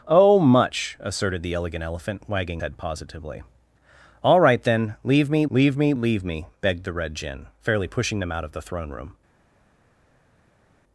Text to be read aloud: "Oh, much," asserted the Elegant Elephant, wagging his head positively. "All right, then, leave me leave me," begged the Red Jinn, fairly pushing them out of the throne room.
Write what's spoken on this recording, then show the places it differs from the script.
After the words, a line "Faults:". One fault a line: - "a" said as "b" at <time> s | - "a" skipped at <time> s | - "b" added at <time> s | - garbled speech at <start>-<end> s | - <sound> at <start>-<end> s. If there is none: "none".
"Oh, much," asserted the Elegant Elephant, wagging head positively. "All right, then, leave me leave me leave me," begged the Red Jinn, fairly pushing them out of the throne room.
Faults:
- "his" skipped at 2.6 s
- "leave me" added at 5.9 s